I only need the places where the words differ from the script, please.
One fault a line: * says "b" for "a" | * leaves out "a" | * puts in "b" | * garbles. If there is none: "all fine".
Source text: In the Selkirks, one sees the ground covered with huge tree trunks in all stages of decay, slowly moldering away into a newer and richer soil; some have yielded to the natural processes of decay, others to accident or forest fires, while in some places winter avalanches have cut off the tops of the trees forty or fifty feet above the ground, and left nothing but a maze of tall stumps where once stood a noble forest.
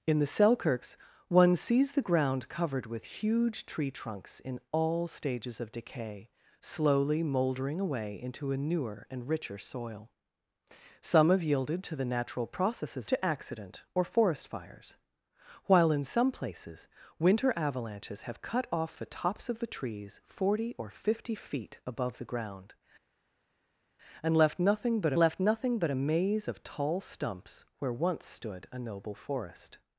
* leaves out "of decay others"
* puts in "left nothing but"